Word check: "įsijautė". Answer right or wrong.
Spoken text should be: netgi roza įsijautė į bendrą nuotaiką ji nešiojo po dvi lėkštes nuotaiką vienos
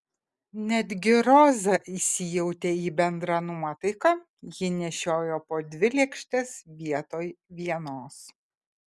right